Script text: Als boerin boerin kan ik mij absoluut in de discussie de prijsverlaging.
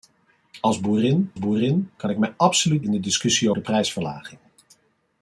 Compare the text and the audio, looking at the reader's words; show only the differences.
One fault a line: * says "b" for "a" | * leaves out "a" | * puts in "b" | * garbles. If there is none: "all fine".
all fine